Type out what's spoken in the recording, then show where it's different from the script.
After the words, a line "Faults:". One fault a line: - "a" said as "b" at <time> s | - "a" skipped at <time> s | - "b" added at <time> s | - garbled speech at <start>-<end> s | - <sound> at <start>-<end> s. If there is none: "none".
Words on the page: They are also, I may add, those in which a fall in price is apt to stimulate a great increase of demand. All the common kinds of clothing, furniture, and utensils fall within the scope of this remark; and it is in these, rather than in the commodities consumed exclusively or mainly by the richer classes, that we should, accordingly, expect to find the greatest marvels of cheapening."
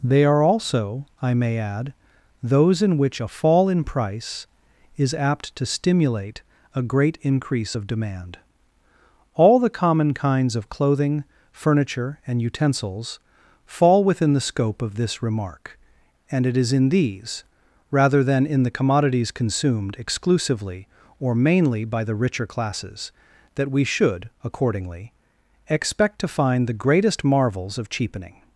They are also, I may add, those in which a fall in price is apt to stimulate a great increase of demand. All the common kinds of clothing, furniture, and utensils fall within the scope of this remark; and it is in these, rather than in the commodities consumed exclusively or mainly by the richer classes, that we should, accordingly, expect to find the greatest marvels of cheapening."
Faults:
none